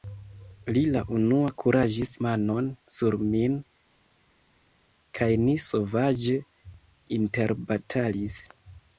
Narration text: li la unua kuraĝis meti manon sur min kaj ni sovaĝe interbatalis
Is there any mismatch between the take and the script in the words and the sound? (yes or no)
yes